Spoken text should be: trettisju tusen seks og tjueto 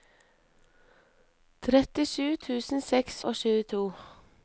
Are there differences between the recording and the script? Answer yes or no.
no